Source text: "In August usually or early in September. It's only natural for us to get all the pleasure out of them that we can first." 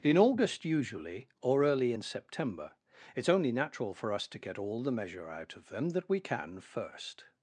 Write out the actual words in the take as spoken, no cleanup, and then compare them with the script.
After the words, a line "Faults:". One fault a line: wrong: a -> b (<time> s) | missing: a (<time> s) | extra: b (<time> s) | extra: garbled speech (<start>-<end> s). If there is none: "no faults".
"In August usually or early in September. It's only natural for us to get all the measure out of them that we can first."
Faults:
wrong: pleasure -> measure (4.9 s)